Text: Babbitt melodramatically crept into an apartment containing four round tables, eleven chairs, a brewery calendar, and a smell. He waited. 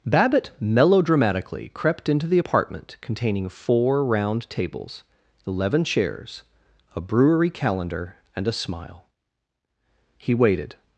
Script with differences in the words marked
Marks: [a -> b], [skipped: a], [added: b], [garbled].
Babbitt melodramatically crept into [an -> the] apartment containing four round tables, eleven chairs, a brewery calendar, and a [smell. -> smile] He waited.